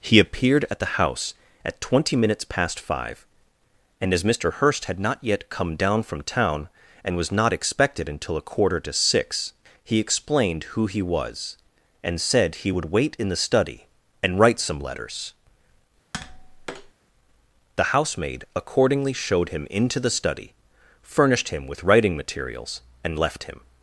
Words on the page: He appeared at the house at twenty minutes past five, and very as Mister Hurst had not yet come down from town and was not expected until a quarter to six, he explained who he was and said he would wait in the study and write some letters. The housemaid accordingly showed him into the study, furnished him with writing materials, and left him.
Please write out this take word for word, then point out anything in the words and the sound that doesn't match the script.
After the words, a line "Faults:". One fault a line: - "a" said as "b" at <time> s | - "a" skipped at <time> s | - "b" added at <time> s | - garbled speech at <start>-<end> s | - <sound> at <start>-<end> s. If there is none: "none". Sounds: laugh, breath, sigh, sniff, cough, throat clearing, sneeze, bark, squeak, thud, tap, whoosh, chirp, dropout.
He appeared at the house at twenty minutes past five, and as Mister Hurst had not yet come down from town and was not expected until a quarter to six, he explained who he was and said he would wait in the study and write some letters. The housemaid accordingly showed him into the study, furnished him with writing materials, and left him.
Faults:
- "very" skipped at 4.2 s
- tap at 16.1-16.9 s